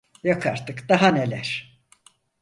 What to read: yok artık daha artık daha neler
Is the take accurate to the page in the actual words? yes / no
no